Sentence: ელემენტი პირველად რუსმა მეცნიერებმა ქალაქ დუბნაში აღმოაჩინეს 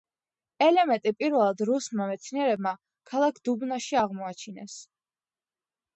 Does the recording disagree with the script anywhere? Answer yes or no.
no